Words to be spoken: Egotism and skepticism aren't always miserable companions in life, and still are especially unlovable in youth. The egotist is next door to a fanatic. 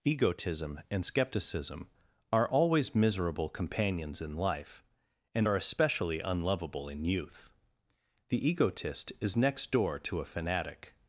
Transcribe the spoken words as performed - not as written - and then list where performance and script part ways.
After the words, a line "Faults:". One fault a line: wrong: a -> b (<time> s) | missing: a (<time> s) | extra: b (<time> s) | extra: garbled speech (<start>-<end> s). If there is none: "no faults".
Egotism and skepticism are always miserable companions in life, and are especially unlovable in youth. The egotist is next door to a fanatic.
Faults:
wrong: aren't -> are (2.3 s)
missing: still (5.5 s)